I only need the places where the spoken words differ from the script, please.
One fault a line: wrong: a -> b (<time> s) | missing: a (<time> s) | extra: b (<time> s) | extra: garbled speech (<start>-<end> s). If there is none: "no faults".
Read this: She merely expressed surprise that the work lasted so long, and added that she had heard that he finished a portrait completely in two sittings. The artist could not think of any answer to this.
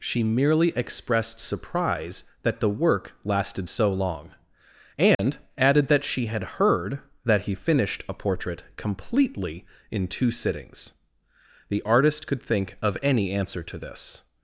missing: not (12.4 s)